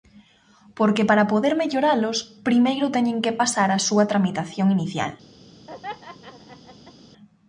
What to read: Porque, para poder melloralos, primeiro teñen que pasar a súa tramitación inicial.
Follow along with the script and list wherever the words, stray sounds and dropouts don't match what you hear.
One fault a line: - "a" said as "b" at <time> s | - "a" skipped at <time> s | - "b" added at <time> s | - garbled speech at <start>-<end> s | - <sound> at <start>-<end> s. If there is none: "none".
- laugh at 5.7-6.9 s